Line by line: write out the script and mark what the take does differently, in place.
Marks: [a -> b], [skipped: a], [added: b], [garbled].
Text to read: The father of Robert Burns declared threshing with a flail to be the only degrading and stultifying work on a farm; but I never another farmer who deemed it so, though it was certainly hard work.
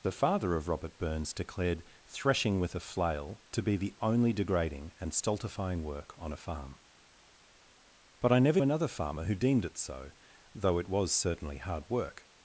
The father of Robert Burns declared threshing with a flail to be the only degrading and stultifying work on a farm; but I never another farmer who deemed it so, though it was certainly hard work.